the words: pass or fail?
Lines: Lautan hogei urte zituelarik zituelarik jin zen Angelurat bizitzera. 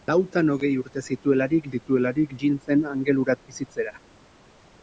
pass